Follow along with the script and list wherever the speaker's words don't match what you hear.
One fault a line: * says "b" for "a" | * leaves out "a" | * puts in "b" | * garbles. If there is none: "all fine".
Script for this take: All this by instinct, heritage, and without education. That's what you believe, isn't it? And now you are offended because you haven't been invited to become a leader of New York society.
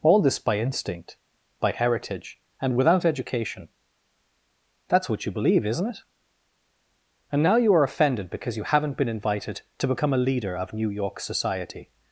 * puts in "by"